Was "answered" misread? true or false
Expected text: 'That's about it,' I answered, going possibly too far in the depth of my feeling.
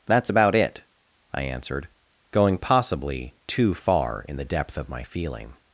false